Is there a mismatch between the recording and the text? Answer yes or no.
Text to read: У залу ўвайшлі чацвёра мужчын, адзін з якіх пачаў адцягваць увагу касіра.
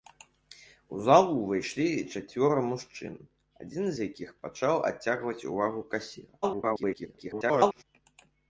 yes